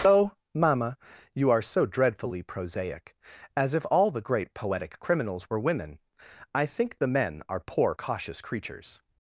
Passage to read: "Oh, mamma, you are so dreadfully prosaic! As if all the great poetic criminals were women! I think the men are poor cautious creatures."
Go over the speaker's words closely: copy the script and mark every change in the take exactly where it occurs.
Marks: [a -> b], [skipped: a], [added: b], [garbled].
"Oh, mamma, you are so dreadfully prosaic! As if all the great poetic criminals were women! I think the men are poor cautious creatures."